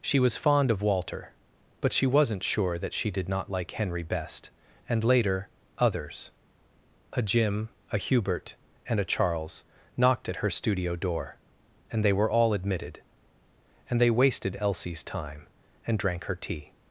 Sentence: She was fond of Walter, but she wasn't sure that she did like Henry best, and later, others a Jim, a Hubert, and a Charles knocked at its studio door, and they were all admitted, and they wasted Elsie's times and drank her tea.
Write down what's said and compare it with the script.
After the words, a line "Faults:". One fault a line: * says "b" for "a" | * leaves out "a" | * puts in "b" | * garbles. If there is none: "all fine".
She was fond of Walter, but she wasn't sure that she did not like Henry best, and later, others a Jim, a Hubert, and a Charles knocked at her studio door, and they were all admitted, and they wasted Elsie's time and drank her tea.
Faults:
* puts in "not"
* says "her" for "its"
* says "time" for "times"